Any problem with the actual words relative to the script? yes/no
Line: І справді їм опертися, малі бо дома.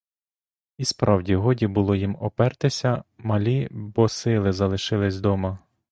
yes